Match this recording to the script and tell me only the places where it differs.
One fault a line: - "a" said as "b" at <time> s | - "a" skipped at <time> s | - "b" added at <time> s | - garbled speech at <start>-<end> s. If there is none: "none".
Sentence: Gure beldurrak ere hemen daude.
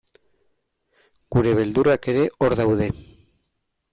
- "hemen" said as "hor" at 2.4 s